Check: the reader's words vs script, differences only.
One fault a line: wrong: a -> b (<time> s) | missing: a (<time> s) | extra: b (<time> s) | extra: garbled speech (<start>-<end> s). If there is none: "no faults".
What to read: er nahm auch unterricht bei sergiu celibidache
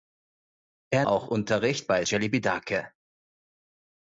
missing: nahm (1.1 s)
missing: sergiu (2.0 s)